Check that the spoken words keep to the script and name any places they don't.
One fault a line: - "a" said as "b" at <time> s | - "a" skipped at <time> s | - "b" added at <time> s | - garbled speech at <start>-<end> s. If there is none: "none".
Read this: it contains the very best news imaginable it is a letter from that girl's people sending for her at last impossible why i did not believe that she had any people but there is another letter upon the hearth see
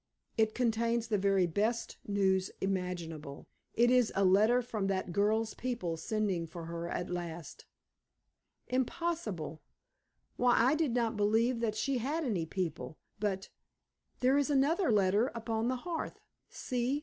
none